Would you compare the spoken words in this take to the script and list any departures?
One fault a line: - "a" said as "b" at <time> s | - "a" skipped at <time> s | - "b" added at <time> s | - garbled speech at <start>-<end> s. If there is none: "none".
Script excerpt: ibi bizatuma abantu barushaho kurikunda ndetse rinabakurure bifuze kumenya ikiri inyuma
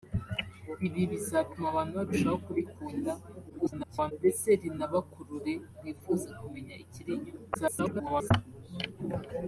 - garbled speech at 3.5-4.1 s
- garbled speech at 7.5-8.3 s